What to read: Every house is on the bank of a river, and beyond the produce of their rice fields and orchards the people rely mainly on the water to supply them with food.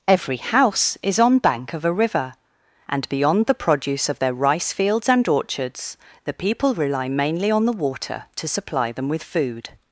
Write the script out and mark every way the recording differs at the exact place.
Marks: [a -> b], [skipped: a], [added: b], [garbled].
Every house is on [skipped: the] bank of a river, and beyond the produce of their rice fields and orchards the people rely mainly on the water to supply them with food.